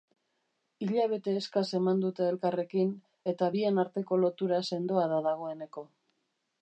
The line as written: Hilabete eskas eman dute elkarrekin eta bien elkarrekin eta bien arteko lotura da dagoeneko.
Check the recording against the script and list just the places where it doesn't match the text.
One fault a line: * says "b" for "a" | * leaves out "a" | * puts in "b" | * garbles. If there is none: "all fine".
* leaves out "elkarrekin eta bien"
* puts in "sendoa"